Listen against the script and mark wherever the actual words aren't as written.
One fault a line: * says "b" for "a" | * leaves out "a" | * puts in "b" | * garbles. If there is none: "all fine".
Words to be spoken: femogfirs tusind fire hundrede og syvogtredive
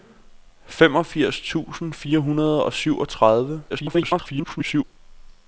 * garbles